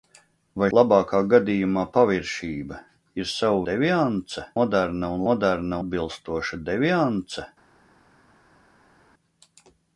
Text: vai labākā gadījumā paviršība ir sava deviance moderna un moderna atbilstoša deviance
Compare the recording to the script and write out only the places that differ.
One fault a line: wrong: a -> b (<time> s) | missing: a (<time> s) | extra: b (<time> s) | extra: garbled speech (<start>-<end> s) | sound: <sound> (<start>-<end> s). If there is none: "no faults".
no faults